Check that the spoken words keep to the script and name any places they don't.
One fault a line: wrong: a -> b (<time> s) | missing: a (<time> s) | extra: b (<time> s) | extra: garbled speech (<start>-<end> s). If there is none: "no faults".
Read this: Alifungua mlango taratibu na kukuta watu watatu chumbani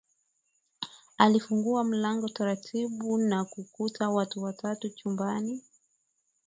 no faults